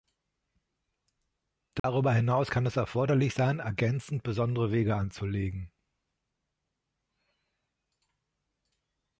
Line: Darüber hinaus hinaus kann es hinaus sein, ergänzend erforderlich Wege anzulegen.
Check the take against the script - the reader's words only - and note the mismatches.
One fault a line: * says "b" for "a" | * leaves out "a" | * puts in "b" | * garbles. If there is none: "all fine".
* leaves out "hinaus"
* says "erforderlich" for "hinaus"
* says "besondere" for "erforderlich"